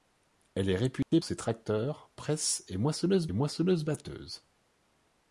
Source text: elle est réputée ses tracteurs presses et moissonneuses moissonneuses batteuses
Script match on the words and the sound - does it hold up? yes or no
no